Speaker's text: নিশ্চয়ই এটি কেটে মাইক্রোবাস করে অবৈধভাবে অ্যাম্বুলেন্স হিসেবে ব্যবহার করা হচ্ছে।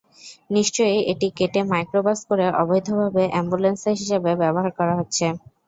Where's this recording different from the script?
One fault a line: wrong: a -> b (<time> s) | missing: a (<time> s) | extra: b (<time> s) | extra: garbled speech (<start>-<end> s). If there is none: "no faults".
no faults